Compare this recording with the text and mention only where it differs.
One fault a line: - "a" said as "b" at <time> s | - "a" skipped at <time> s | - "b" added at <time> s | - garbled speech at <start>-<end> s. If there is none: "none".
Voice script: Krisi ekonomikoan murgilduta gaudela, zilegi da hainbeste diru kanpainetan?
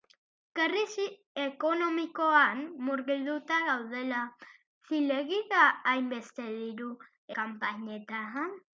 none